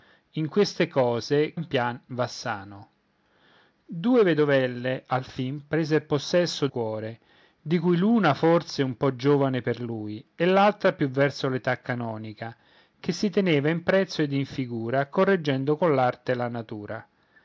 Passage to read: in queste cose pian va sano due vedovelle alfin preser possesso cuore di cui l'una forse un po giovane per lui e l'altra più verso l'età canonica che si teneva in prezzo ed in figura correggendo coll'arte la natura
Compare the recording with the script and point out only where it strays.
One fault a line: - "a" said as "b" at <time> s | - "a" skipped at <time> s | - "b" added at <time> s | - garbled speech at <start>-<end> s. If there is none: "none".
none